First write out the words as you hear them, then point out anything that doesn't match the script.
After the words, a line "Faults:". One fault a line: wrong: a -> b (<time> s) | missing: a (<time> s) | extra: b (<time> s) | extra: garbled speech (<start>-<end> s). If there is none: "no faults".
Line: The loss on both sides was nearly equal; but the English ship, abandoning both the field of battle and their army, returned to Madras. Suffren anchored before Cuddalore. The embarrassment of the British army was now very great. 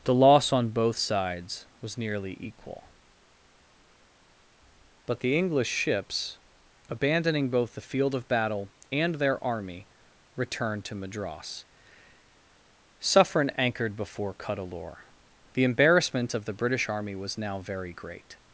The loss on both sides was nearly equal; but the English ships, abandoning both the field of battle and their army, returned to Madras. Suffren anchored before Cuddalore. The embarrassment of the British army was now very great.
Faults:
wrong: ship -> ships (5.7 s)